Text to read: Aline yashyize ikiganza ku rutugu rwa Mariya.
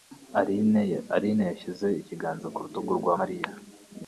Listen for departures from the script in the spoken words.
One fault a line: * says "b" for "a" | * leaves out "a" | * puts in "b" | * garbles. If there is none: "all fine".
all fine